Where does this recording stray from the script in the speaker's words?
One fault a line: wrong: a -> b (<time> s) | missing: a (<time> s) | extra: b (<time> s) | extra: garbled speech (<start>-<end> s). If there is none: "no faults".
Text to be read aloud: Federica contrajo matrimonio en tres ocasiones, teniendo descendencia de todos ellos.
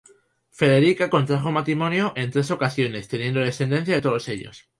no faults